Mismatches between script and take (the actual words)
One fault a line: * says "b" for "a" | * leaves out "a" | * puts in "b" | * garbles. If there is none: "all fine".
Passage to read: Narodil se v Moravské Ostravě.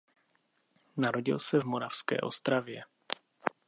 all fine